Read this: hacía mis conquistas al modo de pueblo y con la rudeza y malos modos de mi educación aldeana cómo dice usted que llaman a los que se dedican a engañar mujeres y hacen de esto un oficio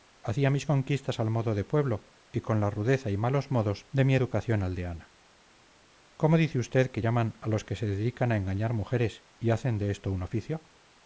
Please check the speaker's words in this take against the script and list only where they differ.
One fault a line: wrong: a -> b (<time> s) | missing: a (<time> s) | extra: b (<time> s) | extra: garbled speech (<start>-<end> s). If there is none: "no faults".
no faults